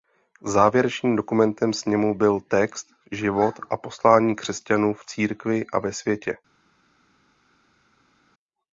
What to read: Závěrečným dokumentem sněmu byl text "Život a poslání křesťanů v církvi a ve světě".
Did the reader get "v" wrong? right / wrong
right